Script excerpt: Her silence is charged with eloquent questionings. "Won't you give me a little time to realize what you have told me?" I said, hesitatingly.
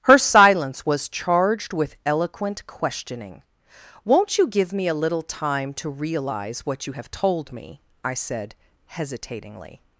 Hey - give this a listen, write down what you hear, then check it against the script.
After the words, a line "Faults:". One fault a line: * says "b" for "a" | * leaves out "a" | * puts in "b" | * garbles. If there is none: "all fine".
Her silence was charged with eloquent questioning. "Won't you give me a little time to realize what you have told me?" I said, hesitatingly.
Faults:
* says "was" for "is"
* says "questioning" for "questionings"